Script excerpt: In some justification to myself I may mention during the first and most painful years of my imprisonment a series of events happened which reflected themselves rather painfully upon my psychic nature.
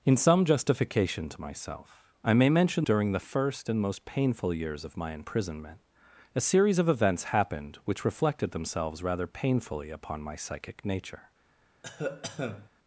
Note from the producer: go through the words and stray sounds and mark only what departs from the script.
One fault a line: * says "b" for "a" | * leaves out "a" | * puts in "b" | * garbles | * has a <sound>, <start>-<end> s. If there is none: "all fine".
* has a cough, 11.8-12.7 s